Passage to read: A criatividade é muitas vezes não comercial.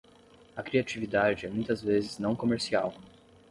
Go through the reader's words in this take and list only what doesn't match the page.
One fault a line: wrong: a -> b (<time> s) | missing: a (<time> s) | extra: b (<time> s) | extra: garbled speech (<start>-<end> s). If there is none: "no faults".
no faults